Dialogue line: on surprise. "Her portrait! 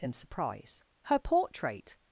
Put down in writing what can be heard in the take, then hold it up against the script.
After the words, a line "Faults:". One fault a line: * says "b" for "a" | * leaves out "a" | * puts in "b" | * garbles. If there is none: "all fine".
in surprise. "Her portrait!
Faults:
* says "in" for "on"